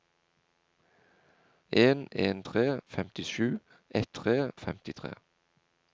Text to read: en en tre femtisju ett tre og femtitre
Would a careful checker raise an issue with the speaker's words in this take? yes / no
no